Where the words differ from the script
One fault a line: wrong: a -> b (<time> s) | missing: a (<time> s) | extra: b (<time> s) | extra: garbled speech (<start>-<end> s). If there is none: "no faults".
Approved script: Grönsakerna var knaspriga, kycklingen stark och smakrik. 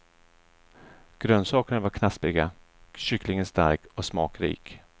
no faults